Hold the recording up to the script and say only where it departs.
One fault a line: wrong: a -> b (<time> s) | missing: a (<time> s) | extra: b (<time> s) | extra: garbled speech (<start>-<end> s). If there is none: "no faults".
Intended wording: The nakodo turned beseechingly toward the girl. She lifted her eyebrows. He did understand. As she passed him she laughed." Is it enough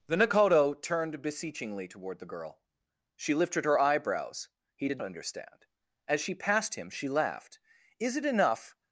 no faults